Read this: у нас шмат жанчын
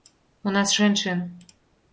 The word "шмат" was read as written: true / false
false